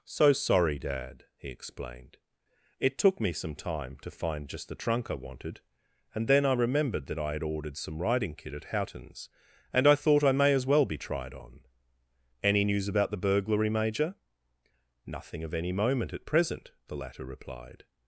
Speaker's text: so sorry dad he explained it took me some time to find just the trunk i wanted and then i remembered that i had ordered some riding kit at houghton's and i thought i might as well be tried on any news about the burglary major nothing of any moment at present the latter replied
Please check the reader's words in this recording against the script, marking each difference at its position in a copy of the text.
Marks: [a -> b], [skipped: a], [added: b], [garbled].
so sorry dad he explained it took me some time to find just the trunk i wanted and then i remembered that i had ordered some riding kit at houghton's and i thought i [might -> may] as well be tried on any news about the burglary major nothing of any moment at present the latter replied